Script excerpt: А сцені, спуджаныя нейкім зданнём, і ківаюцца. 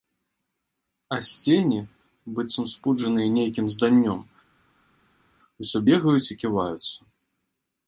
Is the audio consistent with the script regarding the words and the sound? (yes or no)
no